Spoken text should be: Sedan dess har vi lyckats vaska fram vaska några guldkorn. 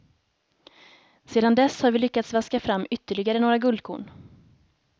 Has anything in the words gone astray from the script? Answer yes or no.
yes